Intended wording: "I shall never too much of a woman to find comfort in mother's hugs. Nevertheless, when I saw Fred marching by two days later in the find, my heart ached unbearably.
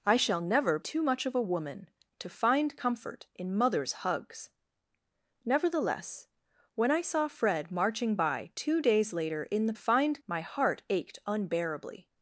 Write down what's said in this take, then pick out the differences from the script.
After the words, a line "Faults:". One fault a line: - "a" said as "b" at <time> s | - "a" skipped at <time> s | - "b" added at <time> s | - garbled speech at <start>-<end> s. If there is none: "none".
"I shall never too much of a woman to find comfort in mother's hugs. Nevertheless, when I saw Fred marching by two days later in the find, my heart ached unbearably.
Faults:
none